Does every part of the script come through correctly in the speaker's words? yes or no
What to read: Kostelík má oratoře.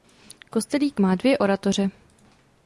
no